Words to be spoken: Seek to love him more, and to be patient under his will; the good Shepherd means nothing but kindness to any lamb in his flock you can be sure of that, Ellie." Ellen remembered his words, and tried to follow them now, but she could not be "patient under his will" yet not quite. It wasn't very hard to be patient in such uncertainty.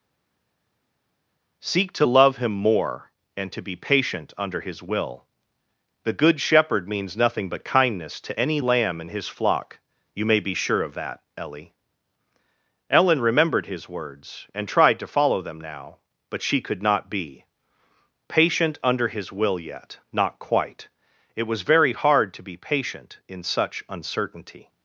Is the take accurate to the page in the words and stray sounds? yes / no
no